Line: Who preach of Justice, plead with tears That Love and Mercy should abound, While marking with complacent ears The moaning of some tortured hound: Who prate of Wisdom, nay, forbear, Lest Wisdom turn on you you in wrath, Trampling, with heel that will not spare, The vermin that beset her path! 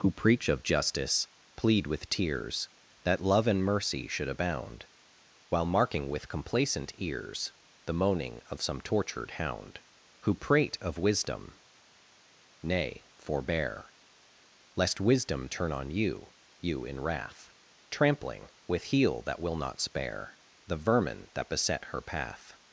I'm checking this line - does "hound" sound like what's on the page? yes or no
yes